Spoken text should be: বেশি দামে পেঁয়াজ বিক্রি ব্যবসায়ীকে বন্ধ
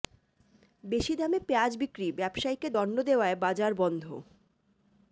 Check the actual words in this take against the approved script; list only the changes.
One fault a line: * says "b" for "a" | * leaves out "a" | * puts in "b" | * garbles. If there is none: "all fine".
* puts in "দণ্ড দেওয়ায় বাজার"